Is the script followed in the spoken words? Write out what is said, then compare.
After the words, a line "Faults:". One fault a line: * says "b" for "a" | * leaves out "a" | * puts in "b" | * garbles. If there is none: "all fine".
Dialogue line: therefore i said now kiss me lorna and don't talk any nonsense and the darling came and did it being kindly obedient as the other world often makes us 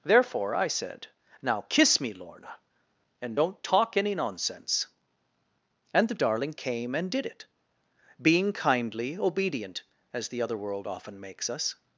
therefore i said now kiss me lorna and don't talk any nonsense and the darling came and did it being kindly obedient as the other world often makes us
Faults:
all fine